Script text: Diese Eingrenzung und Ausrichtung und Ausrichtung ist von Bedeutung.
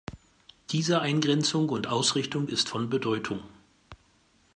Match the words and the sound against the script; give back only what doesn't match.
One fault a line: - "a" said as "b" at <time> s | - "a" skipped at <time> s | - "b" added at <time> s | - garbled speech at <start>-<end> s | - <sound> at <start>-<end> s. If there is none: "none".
- "und Ausrichtung" skipped at 2.5 s